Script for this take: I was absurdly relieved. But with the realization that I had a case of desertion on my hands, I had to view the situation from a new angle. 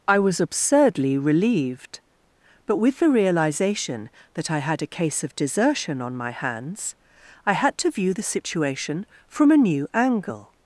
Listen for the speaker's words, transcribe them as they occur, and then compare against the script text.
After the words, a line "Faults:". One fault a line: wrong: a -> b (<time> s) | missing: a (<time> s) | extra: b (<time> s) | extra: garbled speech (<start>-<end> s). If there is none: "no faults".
I was absurdly relieved. But with the realization that I had a case of desertion on my hands, I had to view the situation from a new angle.
Faults:
no faults